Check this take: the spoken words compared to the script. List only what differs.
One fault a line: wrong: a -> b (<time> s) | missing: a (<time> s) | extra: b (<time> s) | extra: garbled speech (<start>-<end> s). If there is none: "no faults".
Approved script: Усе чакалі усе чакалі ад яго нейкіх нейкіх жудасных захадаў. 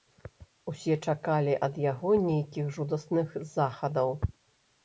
missing: усе чакалі (1.5 s)
missing: нейкіх (2.7 s)